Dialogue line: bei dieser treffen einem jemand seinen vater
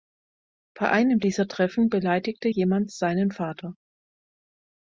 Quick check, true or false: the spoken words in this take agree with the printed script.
false